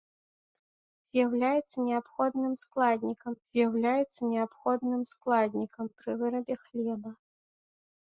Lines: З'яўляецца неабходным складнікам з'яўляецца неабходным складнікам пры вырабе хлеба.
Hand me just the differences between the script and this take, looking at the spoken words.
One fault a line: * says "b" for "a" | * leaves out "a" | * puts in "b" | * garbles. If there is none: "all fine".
all fine